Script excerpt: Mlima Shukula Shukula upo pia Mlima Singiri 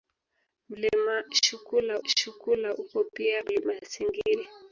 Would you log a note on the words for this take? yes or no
no